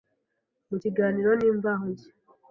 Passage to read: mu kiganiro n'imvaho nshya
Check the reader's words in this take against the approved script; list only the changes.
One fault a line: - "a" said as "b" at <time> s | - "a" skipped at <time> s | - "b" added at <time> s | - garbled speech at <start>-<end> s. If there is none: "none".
none